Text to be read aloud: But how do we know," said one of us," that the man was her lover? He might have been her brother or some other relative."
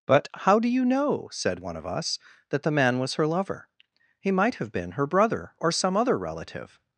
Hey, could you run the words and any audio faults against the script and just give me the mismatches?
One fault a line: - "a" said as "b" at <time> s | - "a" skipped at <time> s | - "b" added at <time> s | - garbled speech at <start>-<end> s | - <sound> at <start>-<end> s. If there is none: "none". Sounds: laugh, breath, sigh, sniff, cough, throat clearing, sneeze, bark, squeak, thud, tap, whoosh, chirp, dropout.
- "we" said as "you" at 0.7 s